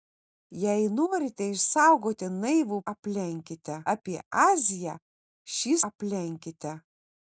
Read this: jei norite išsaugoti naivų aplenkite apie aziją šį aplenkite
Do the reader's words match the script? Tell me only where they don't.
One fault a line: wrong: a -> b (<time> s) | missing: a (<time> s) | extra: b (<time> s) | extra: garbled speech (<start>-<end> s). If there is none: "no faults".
no faults